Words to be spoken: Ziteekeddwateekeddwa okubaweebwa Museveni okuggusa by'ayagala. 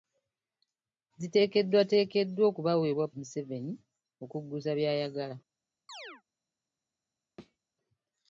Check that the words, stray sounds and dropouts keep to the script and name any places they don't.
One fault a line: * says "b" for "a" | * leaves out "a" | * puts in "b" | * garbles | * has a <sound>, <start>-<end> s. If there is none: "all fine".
* has a chirp, 5.9-6.2 s
* has a thud, 7.4-7.6 s